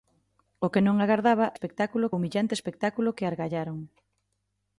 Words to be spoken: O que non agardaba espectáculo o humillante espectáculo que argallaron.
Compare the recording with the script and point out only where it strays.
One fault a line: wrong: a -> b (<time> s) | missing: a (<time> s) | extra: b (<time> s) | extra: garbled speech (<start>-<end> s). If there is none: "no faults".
no faults